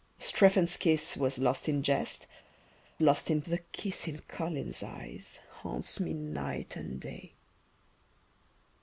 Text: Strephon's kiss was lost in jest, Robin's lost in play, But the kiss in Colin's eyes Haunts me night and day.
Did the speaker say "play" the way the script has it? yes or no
no